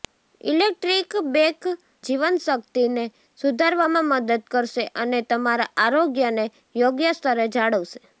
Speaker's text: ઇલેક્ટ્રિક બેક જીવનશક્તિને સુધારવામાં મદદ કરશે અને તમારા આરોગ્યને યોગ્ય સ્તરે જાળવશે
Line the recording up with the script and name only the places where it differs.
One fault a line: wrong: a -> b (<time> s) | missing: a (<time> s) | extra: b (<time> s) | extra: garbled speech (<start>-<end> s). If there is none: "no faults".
no faults